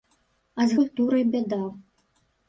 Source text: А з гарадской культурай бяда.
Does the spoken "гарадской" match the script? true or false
false